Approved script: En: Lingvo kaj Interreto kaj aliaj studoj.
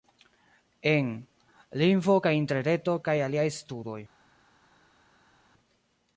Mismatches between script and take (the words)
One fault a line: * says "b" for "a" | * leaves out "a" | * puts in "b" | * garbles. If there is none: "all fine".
all fine